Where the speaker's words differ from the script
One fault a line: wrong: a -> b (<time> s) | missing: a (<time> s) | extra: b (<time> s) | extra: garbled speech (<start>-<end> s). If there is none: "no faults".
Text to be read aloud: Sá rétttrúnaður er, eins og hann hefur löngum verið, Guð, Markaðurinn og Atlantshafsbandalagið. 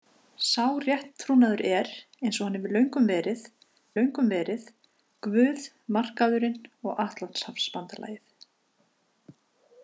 extra: löngum verið (4.0 s)